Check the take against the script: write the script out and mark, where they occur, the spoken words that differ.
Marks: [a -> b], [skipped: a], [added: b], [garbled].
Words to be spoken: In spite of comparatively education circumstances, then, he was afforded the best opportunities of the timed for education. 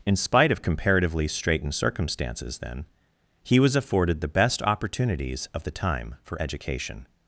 In spite of comparatively [education -> straitened] circumstances, then, he was afforded the best opportunities of the [timed -> time] for education.